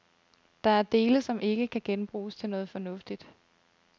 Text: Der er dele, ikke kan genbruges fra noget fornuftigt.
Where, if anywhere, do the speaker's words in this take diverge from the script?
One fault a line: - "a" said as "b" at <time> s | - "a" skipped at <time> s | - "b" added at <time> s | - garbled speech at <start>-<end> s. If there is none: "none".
- "som" added at 1.2 s
- "fra" said as "til" at 2.4 s